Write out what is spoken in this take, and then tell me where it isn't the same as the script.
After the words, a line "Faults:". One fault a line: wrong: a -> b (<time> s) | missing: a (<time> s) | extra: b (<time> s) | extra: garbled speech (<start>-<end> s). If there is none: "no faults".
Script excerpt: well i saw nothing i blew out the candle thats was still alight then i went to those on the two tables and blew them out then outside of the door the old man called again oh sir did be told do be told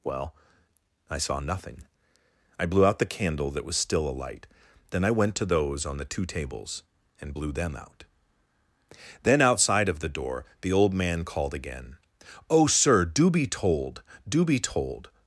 well i saw nothing i blew out the candle that was still alight then i went to those on the two tables and blew them out then outside of the door the old man called again oh sir do be told do be told
Faults:
wrong: thats -> that (3.5 s)
wrong: did -> do (13.0 s)